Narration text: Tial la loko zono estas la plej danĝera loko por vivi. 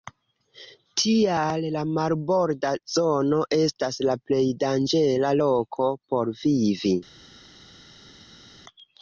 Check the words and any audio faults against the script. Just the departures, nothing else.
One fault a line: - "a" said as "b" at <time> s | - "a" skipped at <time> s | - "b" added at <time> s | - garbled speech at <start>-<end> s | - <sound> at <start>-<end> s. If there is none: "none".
- "loko" said as "marborda" at 2.0 s